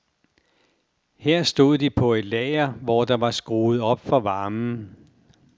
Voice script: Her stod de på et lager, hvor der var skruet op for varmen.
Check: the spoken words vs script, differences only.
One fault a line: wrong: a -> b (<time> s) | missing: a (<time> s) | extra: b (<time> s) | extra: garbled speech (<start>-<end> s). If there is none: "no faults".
no faults